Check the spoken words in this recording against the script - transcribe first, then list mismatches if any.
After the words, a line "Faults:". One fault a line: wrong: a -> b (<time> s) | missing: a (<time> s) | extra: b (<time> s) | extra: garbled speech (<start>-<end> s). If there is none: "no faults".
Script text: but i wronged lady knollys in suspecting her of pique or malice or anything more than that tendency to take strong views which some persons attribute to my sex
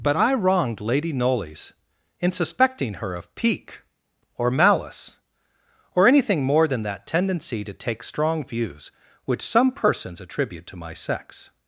but i wronged lady knollys in suspecting her of pique or malice or anything more than that tendency to take strong views which some persons attribute to my sex
Faults:
no faults